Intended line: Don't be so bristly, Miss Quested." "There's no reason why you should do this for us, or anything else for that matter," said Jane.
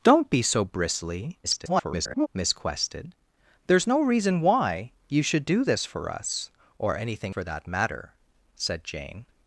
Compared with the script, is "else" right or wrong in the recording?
wrong